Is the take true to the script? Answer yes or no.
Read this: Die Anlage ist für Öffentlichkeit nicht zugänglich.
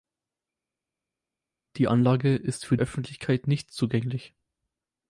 yes